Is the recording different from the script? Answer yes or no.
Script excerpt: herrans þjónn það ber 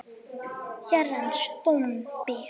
yes